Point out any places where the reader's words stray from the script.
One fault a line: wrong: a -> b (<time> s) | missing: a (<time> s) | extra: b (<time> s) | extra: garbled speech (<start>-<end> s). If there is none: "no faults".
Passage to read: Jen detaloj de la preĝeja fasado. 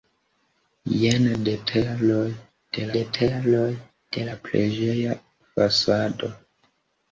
extra: detaloj de (3.0 s)